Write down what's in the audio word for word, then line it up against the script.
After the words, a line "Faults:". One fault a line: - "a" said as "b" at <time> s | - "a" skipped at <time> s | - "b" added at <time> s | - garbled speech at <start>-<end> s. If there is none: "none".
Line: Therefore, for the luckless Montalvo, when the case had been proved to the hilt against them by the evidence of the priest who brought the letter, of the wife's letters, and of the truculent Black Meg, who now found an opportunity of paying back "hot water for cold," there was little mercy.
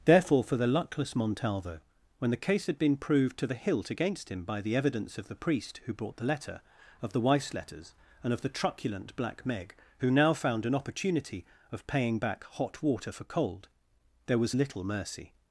Therefore, for the luckless Montalvo, when the case had been proved to the hilt against him by the evidence of the priest who brought the letter, of the wife's letters, and of the truculent Black Meg, who now found an opportunity of paying back "hot water for cold," there was little mercy.
Faults:
- "them" said as "him" at 4.3 s